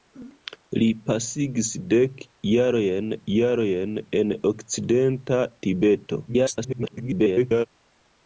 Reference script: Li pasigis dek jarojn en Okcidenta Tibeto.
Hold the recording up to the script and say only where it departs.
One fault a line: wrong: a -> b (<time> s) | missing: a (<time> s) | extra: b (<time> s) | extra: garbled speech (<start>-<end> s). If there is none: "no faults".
extra: jarojn (3.3 s)
extra: garbled speech (6.3-7.7 s)